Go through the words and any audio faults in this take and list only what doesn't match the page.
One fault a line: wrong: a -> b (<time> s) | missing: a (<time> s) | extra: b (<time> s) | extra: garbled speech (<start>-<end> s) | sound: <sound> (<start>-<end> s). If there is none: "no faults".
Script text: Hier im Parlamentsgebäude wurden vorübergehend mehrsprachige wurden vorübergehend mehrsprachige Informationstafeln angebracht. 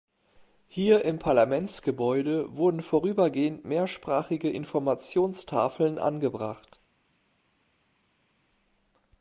missing: wurden vorübergehend mehrsprachige (4.5 s)